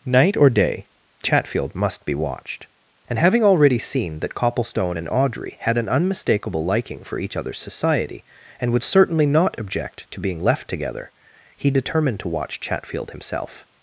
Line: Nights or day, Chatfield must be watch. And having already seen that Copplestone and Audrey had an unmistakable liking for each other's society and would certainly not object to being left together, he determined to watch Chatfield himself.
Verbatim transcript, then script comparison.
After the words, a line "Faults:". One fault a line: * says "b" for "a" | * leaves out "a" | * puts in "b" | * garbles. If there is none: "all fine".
Night or day, Chatfield must be watched. And having already seen that Copplestone and Audrey had an unmistakable liking for each other's society and would certainly not object to being left together, he determined to watch Chatfield himself.
Faults:
* says "Night" for "Nights"
* says "watched" for "watch"